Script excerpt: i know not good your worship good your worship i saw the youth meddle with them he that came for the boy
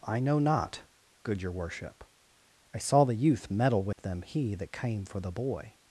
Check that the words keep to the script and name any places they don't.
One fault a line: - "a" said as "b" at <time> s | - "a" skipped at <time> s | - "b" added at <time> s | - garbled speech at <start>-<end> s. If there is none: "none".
- "good your worship" skipped at 2.0 s